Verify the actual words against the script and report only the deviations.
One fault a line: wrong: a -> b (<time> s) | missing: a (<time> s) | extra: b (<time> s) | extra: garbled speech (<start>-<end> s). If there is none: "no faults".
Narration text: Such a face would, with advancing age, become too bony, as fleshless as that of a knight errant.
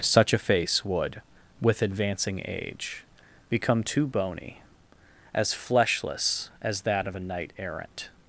no faults